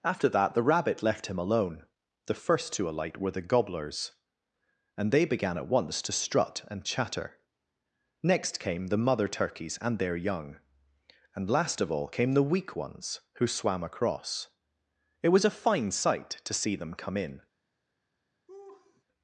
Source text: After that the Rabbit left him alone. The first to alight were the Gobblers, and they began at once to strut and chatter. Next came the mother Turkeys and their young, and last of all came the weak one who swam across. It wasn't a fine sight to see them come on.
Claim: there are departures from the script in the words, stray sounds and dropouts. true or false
true